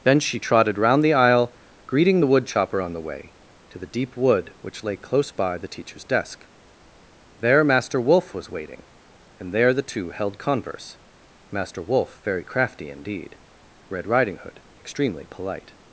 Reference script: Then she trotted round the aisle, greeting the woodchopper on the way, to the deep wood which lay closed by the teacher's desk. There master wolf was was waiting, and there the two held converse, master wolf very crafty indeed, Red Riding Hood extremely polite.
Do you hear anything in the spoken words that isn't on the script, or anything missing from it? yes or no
yes